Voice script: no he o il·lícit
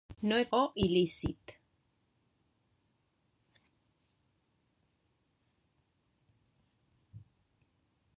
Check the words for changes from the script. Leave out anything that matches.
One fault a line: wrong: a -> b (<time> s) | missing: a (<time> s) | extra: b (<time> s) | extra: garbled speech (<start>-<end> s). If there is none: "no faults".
no faults